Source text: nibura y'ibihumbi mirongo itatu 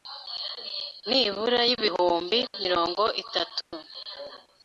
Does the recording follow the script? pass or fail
pass